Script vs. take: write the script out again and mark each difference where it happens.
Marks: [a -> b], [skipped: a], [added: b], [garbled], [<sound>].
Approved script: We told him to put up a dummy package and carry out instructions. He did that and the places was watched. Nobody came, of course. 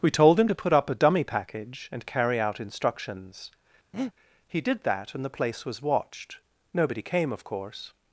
We told him to put up a dummy package and carry out instructions. [breath] He did that and the [places -> place] was watched. Nobody came, of course.